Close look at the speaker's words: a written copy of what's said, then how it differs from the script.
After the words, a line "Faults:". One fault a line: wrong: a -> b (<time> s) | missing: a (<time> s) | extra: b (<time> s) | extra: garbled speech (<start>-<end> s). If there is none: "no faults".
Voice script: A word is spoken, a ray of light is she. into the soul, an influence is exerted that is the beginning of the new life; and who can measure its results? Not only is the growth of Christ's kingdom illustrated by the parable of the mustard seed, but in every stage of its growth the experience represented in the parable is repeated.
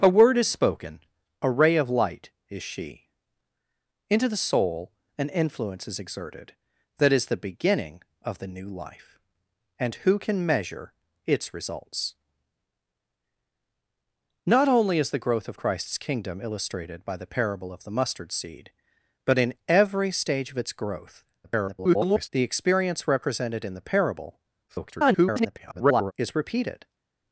A word is spoken, a ray of light is she. into the soul, an influence is exerted that is the beginning of the new life; and who can measure its results? Not only is the growth of Christ's kingdom illustrated by the parable of the mustard seed, but in every stage of its growth [garbled] the experience represented in the parable [garbled] is repeated.
Faults:
extra: garbled speech (21.4-22.3 s)
extra: garbled speech (24.7-26.1 s)